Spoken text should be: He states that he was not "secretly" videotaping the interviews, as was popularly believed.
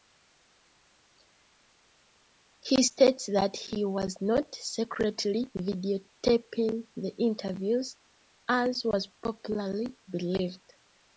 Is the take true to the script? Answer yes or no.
yes